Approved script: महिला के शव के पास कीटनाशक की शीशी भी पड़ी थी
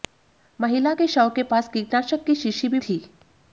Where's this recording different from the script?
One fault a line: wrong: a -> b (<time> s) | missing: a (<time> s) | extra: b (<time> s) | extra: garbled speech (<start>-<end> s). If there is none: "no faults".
missing: पड़ी (2.8 s)